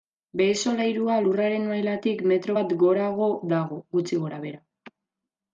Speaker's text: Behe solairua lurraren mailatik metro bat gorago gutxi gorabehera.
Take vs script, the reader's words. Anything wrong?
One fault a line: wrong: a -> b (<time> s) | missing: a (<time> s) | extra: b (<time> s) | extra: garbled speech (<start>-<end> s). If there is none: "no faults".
extra: dago (3.6 s)